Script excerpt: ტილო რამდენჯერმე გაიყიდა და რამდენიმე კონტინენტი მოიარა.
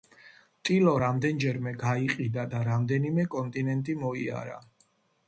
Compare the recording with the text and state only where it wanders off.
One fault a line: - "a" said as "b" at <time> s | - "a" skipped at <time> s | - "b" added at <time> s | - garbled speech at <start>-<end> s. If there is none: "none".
none